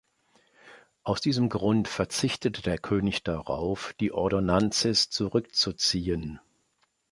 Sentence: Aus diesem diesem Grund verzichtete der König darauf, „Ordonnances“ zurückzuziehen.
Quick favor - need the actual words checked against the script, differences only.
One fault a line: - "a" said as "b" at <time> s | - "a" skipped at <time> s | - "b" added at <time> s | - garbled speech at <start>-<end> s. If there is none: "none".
- "diesem" skipped at 1.5 s
- "die" added at 4.0 s